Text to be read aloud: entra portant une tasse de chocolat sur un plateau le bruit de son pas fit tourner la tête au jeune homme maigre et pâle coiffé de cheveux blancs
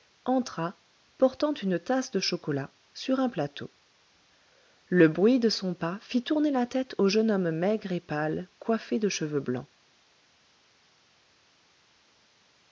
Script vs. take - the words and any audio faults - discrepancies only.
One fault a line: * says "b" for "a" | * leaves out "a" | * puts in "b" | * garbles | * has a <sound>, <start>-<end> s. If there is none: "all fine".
all fine